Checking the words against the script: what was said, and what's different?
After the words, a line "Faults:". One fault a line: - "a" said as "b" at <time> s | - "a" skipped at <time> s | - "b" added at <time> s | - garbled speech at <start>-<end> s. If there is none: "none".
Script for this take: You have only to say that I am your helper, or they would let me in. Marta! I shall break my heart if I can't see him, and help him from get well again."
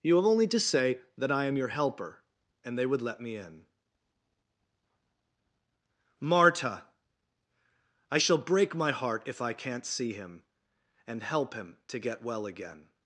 You have only to say that I am your helper, and they would let me in. Marta! I shall break my heart if I can't see him, and help him to get well again."
Faults:
- "or" said as "and" at 2.6 s
- "from" said as "to" at 11.9 s